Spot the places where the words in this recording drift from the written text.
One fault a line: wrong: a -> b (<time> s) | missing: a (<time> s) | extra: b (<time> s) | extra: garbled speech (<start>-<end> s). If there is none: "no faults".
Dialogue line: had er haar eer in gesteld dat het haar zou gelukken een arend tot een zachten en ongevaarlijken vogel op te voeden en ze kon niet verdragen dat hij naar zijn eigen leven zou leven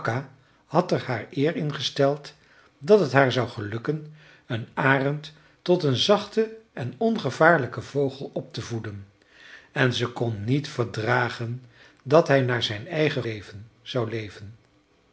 no faults